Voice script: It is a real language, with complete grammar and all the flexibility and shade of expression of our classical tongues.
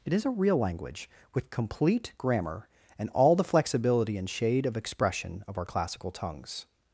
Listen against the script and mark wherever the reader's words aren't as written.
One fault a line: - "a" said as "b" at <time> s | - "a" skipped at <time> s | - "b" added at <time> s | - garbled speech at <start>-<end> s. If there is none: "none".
none